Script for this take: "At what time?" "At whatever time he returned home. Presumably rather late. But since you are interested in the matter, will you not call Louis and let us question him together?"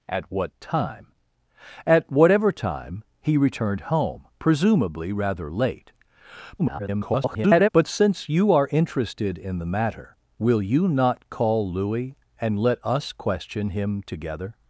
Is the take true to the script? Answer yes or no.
no